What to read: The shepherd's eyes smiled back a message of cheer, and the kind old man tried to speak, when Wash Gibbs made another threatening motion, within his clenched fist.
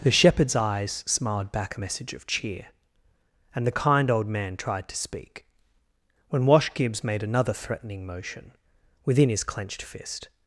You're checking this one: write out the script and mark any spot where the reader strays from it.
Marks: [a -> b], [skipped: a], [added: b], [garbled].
The shepherd's eyes smiled back a message of cheer, and the kind old man tried to speak, when Wash Gibbs made another threatening motion, within his clenched fist.